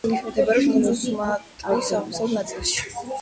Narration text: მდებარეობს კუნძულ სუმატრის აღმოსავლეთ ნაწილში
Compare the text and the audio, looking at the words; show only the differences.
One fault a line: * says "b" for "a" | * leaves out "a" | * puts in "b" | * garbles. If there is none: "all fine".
all fine